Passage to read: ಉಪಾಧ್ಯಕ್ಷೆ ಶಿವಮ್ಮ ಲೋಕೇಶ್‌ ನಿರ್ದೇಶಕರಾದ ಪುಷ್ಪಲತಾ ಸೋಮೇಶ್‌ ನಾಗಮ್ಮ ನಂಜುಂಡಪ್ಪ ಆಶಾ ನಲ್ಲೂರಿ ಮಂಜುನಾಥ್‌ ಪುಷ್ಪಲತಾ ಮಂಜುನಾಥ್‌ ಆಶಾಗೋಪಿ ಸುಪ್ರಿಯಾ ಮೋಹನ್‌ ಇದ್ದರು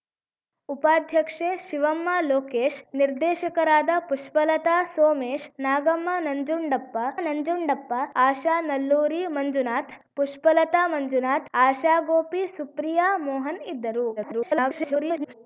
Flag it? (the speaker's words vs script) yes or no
yes